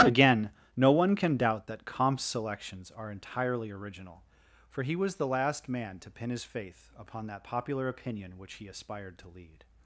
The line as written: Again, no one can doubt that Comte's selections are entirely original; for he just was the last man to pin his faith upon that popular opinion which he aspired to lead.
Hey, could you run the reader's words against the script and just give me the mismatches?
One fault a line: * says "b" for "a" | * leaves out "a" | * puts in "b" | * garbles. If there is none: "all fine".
* leaves out "just"